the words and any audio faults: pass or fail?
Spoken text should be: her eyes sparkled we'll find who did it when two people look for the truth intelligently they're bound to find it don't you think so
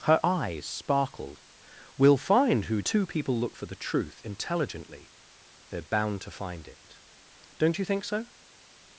fail